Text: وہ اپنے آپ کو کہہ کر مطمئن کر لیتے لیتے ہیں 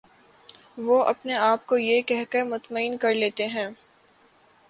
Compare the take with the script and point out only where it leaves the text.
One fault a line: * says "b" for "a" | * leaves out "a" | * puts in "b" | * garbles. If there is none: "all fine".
* puts in "یہ"
* leaves out "لیتے"